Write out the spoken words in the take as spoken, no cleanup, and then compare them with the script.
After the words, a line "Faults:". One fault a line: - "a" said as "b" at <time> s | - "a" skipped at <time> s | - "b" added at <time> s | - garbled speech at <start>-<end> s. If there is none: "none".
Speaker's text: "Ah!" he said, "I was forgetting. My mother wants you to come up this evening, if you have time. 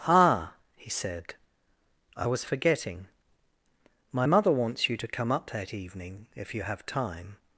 "Ah!" he said, "I was forgetting. My mother wants you to come up that evening, if you have time.
Faults:
- "this" said as "that" at 5.5 s